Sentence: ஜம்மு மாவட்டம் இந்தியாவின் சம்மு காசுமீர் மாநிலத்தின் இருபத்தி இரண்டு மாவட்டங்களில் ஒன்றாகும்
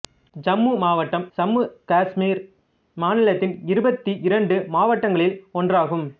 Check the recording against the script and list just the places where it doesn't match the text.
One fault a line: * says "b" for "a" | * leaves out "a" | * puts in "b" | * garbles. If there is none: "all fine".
* leaves out "இந்தியாவின்"